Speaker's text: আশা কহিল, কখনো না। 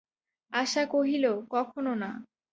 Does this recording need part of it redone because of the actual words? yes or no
no